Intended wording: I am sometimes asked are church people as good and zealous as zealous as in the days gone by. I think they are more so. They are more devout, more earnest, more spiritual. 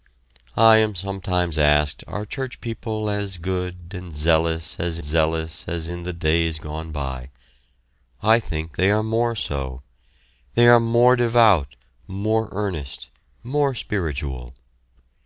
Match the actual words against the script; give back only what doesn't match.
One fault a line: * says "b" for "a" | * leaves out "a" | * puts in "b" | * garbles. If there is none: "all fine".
all fine